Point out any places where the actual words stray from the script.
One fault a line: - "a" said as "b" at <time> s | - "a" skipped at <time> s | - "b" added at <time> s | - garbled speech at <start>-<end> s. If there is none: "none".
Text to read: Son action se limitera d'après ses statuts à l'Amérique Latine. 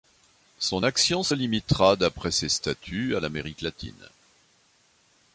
none